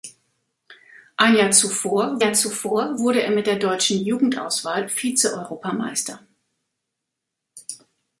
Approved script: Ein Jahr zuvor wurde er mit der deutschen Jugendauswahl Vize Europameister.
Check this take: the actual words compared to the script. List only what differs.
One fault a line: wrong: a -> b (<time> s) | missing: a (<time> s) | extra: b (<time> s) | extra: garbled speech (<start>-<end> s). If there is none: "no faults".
extra: Jahr zuvor (2.2 s)